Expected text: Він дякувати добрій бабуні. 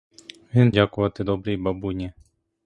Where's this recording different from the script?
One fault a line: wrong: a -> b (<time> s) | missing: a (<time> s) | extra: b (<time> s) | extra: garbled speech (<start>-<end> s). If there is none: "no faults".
no faults